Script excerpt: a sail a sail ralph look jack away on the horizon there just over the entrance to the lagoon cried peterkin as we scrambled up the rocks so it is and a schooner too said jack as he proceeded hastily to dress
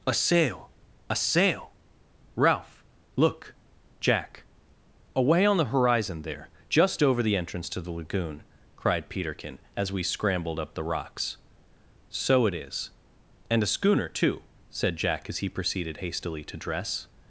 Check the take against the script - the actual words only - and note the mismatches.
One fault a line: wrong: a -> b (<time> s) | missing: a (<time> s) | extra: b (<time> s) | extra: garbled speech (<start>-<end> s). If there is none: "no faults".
no faults